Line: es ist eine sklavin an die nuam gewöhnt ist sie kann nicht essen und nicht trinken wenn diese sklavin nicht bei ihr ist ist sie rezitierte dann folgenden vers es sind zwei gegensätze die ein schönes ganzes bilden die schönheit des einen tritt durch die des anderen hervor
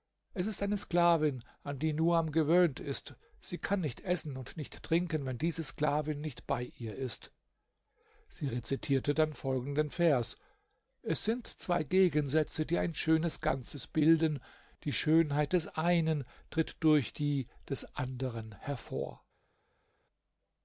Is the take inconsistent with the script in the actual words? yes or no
yes